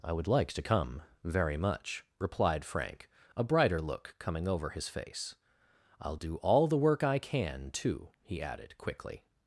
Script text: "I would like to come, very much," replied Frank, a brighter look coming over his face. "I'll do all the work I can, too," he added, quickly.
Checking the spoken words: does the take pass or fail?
pass